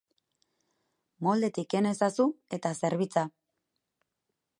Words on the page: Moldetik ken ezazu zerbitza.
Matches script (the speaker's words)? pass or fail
fail